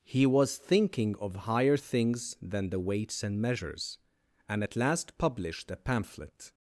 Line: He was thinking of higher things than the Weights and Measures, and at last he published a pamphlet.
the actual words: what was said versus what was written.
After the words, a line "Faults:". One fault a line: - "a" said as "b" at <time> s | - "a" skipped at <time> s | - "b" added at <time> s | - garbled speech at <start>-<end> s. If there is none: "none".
He was thinking of higher things than the Weights and Measures, and at last published a pamphlet.
Faults:
- "he" skipped at 5.2 s